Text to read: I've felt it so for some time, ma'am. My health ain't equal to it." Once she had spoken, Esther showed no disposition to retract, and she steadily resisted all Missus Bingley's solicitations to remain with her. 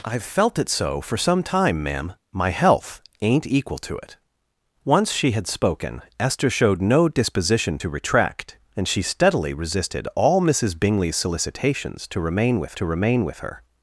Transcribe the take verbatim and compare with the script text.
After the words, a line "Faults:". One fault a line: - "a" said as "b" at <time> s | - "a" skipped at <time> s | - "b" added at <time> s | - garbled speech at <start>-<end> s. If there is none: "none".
I've felt it so for some time, ma'am. My health ain't equal to it." Once she had spoken, Esther showed no disposition to retract, and she steadily resisted all Missus Bingley's solicitations to remain with to remain with her.
Faults:
- "to remain with" added at 12.7 s